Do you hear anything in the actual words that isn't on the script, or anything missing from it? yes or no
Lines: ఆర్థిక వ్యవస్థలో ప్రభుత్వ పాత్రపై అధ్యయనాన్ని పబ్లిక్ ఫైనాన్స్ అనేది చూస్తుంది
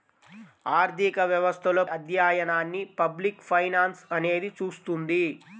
yes